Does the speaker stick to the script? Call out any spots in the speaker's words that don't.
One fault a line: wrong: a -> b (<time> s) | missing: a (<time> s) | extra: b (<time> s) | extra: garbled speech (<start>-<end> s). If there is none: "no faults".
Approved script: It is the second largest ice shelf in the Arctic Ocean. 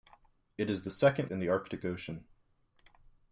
missing: largest ice shelf (1.3 s)